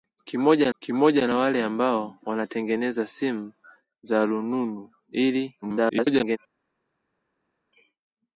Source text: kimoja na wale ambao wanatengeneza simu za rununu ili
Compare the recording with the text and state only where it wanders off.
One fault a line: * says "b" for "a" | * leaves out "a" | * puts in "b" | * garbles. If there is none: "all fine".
* puts in "kimoja"
* garbles